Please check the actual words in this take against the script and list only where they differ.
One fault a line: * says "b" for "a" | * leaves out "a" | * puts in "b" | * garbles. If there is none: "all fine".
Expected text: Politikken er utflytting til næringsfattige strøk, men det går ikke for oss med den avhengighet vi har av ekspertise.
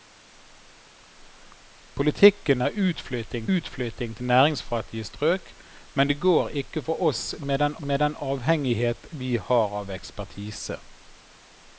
* puts in "utflytting"
* puts in "med den"